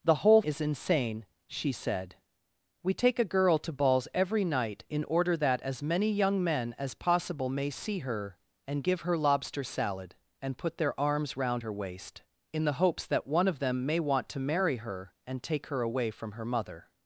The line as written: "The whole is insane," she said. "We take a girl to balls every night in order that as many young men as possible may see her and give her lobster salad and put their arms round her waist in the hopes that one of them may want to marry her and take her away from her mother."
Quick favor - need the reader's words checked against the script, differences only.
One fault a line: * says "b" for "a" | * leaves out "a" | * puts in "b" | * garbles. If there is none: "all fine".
all fine